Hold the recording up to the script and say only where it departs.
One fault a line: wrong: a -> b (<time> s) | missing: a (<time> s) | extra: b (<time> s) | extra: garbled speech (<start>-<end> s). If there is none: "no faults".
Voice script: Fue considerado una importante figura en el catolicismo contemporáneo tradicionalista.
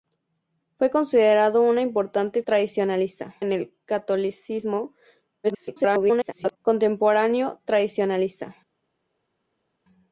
wrong: figura -> tradicionalista (2.4 s)
extra: garbled speech (5.4-6.6 s)